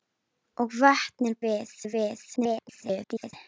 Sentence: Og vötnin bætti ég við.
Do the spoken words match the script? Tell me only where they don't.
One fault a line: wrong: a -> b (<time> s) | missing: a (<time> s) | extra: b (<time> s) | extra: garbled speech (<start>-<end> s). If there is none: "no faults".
wrong: bætti -> við (1.5 s)
extra: garbled speech (2.4-3.3 s)